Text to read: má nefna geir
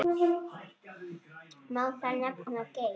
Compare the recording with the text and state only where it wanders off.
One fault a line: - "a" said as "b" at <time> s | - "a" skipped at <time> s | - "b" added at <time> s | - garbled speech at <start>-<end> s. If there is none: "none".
- "þar" added at 2.0 s